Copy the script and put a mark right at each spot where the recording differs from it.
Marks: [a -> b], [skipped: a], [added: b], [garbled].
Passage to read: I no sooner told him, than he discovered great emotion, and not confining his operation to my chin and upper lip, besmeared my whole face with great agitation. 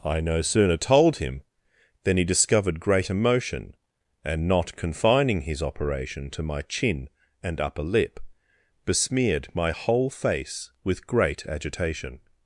I no sooner told him, than he discovered great emotion, and not confining his operation to my chin and upper lip, besmeared my whole face with great agitation.